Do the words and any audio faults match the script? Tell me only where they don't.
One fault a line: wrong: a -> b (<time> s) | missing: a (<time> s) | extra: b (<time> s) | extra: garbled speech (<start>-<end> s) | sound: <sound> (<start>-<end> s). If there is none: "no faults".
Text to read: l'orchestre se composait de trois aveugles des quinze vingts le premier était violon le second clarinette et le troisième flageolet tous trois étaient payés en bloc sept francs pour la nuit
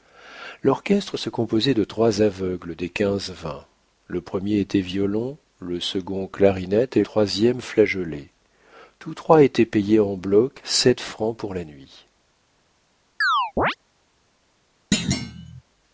missing: le (7.0 s)
sound: chirp (13.2-13.8 s)
sound: thud (14.9-15.6 s)